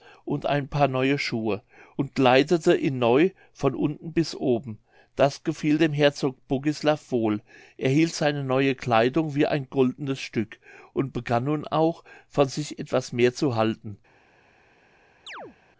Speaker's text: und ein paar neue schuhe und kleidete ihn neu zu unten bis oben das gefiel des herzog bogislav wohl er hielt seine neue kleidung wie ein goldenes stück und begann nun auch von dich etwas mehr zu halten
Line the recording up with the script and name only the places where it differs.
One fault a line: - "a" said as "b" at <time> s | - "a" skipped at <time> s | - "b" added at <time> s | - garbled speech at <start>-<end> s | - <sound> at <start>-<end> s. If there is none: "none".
- "zu" said as "von" at 3.5 s
- "des" said as "dem" at 5.8 s
- "dich" said as "sich" at 12.5 s
- chirp at 15.3-15.6 s